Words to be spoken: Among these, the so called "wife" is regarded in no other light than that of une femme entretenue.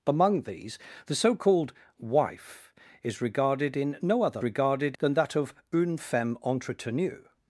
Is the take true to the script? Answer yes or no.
no